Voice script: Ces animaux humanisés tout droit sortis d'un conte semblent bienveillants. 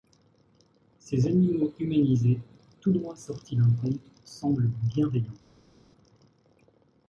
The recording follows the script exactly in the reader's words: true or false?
true